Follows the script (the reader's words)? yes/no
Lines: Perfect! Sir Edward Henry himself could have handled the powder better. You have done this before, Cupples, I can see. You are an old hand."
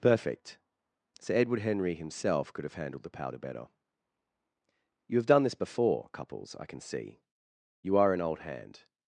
yes